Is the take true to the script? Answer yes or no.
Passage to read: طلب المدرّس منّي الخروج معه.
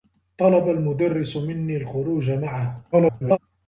no